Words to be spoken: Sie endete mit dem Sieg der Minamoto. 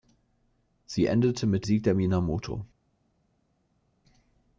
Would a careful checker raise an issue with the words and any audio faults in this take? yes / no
yes